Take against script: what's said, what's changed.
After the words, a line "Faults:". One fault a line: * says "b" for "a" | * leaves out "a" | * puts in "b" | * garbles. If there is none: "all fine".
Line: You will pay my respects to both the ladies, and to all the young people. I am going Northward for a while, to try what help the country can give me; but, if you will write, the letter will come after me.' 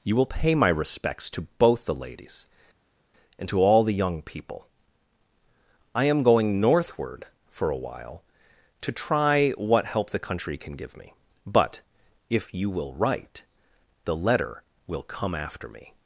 You will pay my respects to both the ladies, and to all the young people. I am going Northward for a while, to try what help the country can give me; but, if you will write, the letter will come after me.'
Faults:
all fine